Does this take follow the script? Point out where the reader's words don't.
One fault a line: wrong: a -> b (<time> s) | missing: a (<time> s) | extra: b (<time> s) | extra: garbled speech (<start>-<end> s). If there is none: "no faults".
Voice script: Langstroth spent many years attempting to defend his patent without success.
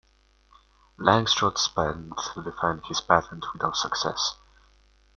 missing: many years attempting (2.2 s)